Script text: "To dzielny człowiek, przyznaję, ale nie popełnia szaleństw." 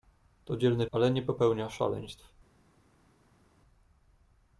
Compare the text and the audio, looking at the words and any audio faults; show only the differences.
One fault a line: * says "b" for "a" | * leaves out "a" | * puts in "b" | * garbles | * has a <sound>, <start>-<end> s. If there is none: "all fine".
* leaves out "człowiek przyznaję"